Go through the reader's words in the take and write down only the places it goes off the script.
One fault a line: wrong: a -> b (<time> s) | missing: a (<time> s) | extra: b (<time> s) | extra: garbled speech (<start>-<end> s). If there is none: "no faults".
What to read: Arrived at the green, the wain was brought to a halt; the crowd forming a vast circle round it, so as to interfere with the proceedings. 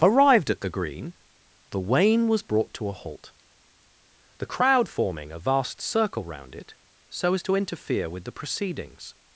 no faults